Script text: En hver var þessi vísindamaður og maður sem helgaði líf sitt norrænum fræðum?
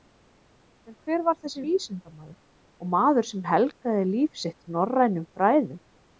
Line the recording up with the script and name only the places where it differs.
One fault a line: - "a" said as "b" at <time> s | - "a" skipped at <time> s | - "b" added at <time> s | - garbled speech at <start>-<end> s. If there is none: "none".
none